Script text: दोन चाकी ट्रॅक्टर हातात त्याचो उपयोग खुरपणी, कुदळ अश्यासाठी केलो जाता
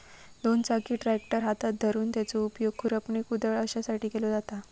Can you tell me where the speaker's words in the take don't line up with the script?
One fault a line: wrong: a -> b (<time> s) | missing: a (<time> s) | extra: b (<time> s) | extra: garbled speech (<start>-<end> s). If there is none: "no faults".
extra: धरून (1.8 s)